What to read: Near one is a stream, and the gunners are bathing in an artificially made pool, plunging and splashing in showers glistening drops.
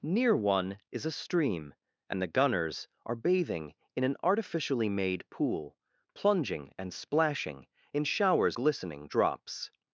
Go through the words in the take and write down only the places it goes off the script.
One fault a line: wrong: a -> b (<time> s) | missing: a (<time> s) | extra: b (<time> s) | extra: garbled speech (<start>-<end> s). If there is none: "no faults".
no faults